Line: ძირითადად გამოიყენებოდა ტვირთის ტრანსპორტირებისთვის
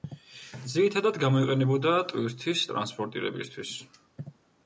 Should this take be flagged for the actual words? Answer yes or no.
no